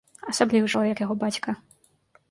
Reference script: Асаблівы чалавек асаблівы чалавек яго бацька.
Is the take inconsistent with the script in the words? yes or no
yes